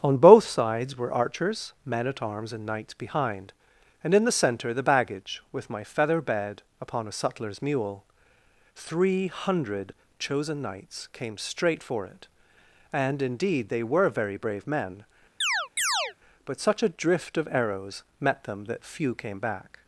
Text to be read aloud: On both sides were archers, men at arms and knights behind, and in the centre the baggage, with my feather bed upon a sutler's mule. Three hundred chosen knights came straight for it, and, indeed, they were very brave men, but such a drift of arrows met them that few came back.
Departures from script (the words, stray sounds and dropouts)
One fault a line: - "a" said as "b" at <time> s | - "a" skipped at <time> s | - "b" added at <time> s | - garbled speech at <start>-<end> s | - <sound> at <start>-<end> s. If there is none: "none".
- chirp at 15.4-16.1 s